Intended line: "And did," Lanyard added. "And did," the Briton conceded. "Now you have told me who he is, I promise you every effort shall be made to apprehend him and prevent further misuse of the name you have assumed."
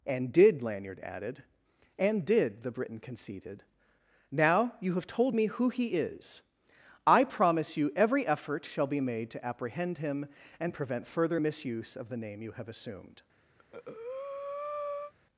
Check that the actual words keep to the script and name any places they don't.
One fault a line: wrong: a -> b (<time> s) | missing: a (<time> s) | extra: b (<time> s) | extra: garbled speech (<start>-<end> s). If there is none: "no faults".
no faults